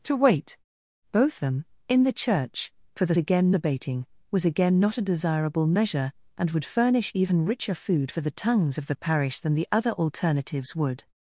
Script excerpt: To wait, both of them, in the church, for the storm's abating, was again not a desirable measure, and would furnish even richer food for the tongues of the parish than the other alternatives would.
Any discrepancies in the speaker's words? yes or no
yes